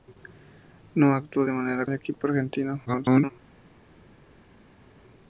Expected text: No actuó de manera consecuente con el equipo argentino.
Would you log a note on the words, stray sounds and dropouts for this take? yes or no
yes